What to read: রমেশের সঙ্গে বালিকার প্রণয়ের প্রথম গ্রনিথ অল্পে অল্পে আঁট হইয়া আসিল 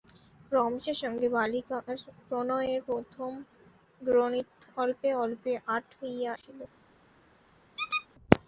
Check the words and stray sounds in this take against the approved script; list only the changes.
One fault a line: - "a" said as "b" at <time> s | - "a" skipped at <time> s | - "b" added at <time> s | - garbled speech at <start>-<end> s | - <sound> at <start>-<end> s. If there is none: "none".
- squeak at 7.8-8.1 s